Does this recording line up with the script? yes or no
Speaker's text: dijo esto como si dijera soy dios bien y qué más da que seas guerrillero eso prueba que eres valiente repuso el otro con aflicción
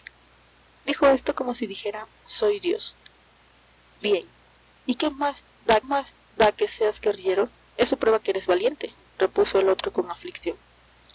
no